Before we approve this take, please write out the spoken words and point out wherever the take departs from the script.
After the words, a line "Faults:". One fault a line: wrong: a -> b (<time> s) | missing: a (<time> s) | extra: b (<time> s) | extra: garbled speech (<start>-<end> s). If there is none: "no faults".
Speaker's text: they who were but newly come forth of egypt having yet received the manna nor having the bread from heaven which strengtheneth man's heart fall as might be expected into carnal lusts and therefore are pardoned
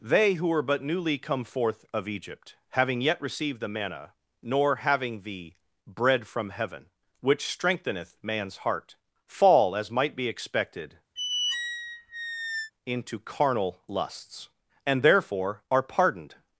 they who were but newly come forth of egypt having yet received the manna nor having the bread from heaven which strengtheneth man's heart fall as might be expected into carnal lusts and therefore are pardoned
Faults:
no faults